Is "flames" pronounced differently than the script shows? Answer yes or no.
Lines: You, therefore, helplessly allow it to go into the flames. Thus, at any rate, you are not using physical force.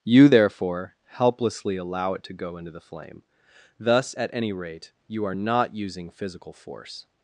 yes